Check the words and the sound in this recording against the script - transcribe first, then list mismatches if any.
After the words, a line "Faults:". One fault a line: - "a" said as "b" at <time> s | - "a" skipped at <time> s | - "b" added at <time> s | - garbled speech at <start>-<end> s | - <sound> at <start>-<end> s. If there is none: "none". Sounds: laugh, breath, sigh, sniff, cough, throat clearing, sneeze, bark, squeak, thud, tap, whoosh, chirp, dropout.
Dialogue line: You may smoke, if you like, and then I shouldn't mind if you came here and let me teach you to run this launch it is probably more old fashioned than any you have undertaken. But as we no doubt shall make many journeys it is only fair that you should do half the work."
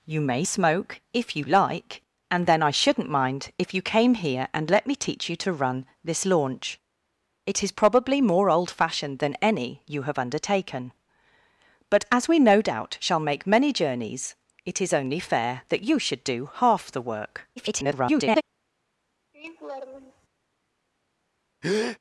You may smoke, if you like, and then I shouldn't mind if you came here and let me teach you to run this launch it is probably more old fashioned than any you have undertaken. But as we no doubt shall make many journeys it is only fair that you should do half the work." [garbled]
Faults:
- garbled speech at 17.6-18.4 s
- laugh at 19.3-20.3 s
- breath at 21.6-22.0 s